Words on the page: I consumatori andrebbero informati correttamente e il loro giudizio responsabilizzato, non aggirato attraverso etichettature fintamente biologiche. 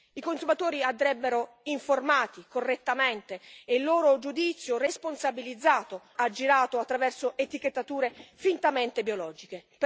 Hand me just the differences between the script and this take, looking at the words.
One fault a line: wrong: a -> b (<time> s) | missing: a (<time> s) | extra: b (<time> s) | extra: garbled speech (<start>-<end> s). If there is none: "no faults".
missing: non (6.0 s)